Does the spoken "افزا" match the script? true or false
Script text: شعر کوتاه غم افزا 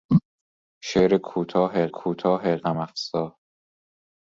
true